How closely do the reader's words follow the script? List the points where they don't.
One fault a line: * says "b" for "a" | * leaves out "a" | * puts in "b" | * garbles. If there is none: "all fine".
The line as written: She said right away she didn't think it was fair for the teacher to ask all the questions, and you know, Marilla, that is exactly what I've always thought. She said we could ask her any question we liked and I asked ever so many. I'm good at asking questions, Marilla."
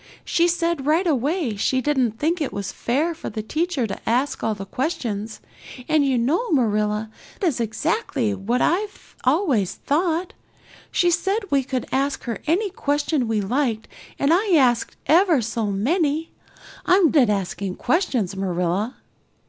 * leaves out "that"
* leaves out "good"